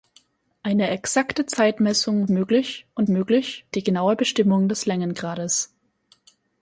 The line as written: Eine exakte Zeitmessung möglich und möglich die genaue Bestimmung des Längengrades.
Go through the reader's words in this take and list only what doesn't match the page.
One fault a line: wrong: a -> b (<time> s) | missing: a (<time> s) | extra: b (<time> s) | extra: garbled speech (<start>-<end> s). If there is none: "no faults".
no faults